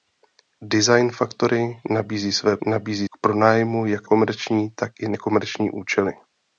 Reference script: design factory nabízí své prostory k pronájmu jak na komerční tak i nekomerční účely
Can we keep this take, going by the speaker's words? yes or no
no